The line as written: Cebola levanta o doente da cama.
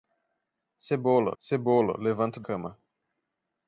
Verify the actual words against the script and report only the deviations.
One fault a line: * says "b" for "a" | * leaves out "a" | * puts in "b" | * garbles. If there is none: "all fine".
* puts in "cebola"
* leaves out "doente da"